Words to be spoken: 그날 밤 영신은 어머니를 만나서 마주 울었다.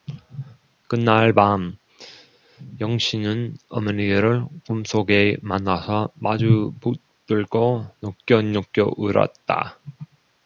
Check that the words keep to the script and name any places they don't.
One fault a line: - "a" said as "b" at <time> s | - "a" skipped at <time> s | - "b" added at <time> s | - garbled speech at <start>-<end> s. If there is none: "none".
- "꿈속에" added at 4.7 s
- "붙들고 느껴느껴" added at 6.8 s